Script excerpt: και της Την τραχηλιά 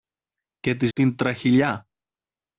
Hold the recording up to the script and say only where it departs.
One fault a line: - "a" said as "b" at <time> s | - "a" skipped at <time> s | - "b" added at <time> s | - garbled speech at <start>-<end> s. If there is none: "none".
none